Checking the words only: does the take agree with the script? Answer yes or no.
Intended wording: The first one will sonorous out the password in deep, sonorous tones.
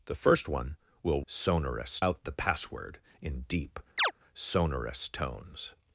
yes